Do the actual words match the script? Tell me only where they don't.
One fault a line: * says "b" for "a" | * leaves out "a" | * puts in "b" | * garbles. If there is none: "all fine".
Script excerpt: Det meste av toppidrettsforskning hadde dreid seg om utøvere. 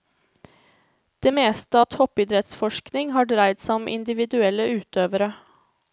* says "har" for "hadde"
* puts in "individuelle"